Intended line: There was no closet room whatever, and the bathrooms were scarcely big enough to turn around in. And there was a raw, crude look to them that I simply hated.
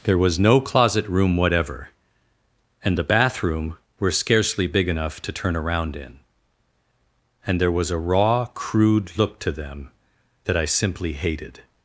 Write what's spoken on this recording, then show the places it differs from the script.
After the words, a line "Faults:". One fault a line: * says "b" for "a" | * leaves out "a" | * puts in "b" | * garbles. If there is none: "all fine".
There was no closet room whatever, and the bathroom were scarcely big enough to turn around in. And there was a raw, crude look to them that I simply hated.
Faults:
* says "bathroom" for "bathrooms"